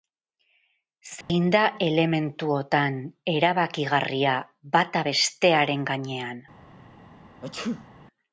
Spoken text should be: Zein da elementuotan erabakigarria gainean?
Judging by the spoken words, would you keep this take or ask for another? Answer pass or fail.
fail